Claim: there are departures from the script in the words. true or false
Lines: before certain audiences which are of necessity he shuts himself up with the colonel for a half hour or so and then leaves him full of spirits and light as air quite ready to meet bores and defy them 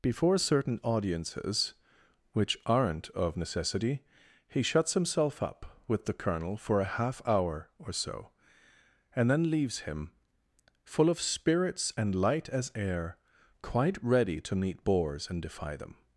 true